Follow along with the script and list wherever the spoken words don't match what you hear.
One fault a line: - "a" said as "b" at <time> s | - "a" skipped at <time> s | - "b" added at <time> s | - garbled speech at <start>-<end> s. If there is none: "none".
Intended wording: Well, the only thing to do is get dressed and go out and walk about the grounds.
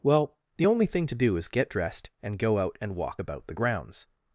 none